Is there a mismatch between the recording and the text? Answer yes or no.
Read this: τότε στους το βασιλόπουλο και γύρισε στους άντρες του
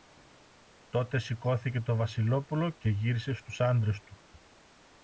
yes